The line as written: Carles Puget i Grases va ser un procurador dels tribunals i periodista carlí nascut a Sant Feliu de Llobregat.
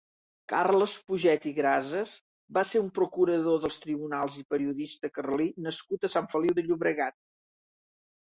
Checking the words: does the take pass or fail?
pass